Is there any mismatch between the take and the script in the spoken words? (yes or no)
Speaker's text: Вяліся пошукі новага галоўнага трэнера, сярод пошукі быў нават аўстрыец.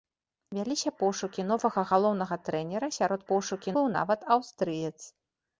no